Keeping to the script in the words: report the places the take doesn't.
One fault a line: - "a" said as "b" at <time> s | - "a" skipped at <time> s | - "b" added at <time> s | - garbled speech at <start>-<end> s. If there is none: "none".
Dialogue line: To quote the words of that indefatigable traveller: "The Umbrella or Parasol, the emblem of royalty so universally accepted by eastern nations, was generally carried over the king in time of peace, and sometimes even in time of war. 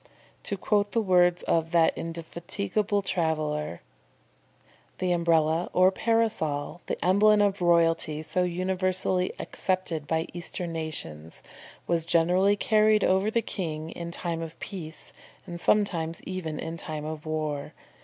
none